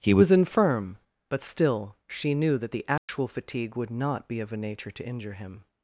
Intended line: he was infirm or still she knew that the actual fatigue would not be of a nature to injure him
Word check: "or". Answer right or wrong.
wrong